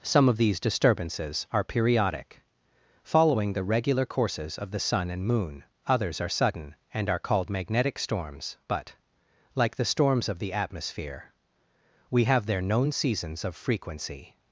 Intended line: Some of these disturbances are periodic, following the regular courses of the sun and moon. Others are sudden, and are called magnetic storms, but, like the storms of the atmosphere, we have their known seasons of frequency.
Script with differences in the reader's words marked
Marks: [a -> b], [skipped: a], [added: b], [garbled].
Some of these disturbances are periodic, following the regular courses of the sun and moon. Others are sudden, and are called magnetic storms, but, like the storms of the atmosphere, we have their known seasons of frequency.